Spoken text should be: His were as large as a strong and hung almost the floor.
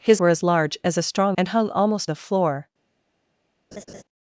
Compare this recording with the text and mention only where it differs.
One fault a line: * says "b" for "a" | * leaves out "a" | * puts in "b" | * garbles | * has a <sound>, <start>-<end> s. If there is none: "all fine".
* has a laugh, 3.7-4.0 s